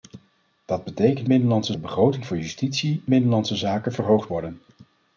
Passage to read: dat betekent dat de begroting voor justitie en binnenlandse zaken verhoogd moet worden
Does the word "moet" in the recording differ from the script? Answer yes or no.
yes